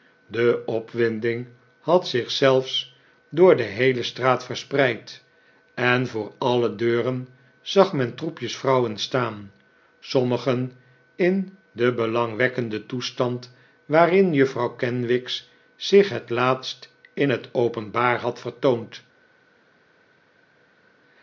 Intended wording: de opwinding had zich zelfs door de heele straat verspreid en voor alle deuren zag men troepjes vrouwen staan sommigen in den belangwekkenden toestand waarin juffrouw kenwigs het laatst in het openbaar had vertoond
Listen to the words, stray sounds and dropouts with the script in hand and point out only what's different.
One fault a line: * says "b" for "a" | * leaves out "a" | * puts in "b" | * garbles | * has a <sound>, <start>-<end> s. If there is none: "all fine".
* puts in "zich"